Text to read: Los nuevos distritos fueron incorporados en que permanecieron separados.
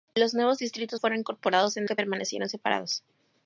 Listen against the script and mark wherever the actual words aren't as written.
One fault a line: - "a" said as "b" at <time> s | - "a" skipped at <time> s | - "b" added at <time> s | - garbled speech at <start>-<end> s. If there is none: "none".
none